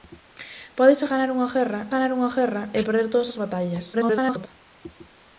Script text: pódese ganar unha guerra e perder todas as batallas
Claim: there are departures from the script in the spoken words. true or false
true